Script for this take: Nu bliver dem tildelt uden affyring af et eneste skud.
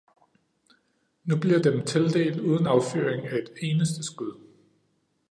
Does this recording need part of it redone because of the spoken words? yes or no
no